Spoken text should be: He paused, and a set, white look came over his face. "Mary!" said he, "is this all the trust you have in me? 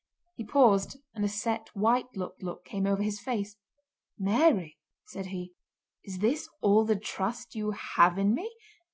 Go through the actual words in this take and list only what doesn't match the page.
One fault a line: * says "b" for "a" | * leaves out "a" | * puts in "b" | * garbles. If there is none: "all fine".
* puts in "look"